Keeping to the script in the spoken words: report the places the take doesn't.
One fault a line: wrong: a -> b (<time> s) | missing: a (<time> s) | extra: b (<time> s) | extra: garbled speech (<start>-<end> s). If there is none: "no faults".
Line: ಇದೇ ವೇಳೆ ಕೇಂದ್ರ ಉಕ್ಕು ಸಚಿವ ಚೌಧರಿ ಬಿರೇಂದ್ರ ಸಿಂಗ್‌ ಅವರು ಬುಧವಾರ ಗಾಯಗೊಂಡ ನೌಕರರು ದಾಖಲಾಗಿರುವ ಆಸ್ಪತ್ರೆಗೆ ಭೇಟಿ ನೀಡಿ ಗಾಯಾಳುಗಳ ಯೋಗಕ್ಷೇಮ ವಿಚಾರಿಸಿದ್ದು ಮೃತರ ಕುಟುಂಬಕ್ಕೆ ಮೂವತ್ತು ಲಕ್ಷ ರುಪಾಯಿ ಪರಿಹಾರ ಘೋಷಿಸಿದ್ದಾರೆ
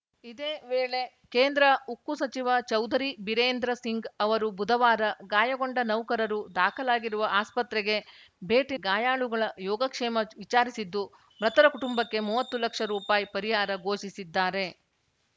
missing: ನೀಡಿ (8.8 s)